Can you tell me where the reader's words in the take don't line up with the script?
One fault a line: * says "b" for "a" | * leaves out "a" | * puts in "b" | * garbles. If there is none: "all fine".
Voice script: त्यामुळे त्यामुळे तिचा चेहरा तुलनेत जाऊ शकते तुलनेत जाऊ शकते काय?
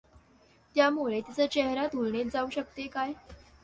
* leaves out "त्यामुळे"
* leaves out "तुलनेत जाऊ शकते"